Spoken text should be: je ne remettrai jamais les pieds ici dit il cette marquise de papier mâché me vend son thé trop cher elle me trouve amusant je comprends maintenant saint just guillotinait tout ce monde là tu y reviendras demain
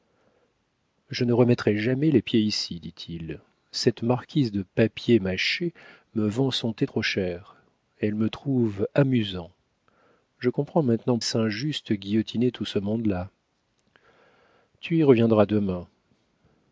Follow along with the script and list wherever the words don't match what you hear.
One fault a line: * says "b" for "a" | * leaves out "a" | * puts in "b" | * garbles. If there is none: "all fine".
all fine